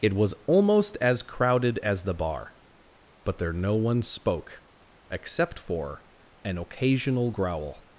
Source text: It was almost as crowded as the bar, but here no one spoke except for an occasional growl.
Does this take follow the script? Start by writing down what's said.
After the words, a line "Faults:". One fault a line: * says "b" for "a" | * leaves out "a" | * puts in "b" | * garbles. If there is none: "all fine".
It was almost as crowded as the bar, but there no one spoke except for an occasional growl.
Faults:
* says "there" for "here"